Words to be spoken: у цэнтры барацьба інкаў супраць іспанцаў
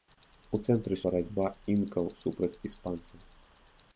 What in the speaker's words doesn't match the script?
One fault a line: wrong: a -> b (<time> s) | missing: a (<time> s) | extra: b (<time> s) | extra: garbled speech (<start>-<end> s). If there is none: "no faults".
no faults